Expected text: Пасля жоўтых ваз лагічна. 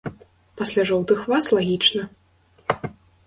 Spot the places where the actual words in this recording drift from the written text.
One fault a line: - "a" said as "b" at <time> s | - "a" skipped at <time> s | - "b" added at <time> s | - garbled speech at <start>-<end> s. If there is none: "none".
none